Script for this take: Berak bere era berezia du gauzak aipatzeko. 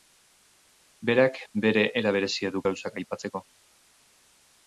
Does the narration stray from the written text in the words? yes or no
no